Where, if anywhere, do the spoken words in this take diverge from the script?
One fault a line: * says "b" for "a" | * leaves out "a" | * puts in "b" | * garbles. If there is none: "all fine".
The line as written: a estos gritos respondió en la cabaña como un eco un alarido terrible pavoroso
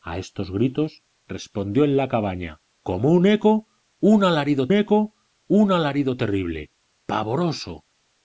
* puts in "eco un alarido"